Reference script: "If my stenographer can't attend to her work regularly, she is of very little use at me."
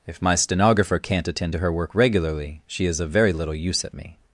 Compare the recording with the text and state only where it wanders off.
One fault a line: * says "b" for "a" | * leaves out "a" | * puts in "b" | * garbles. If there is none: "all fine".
all fine